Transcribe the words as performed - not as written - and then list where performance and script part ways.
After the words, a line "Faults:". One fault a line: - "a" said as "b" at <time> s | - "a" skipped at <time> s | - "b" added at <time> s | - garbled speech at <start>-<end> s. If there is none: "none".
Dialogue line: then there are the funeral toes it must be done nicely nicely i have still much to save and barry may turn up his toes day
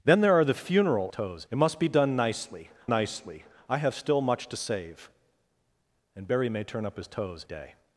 then there are the funeral toes it must be done nicely nicely i have still much to save and barry may turn up his toes day
Faults:
none